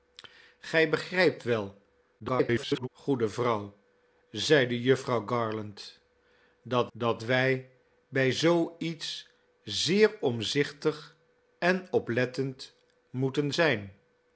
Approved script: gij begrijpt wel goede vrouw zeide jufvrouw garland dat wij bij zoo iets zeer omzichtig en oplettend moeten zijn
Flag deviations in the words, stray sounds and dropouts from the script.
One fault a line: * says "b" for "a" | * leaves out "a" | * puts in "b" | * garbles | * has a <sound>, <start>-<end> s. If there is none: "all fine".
* garbles
* puts in "dat"